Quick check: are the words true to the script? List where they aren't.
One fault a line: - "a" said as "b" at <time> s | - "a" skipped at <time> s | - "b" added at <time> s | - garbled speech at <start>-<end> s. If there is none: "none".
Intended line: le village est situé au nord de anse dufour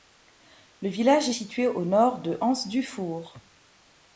none